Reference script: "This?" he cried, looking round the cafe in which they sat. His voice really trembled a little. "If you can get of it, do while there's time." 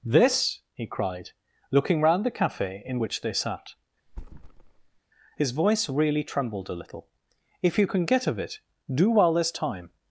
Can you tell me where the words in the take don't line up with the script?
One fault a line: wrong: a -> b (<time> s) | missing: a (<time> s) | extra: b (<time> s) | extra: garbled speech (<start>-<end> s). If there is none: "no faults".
no faults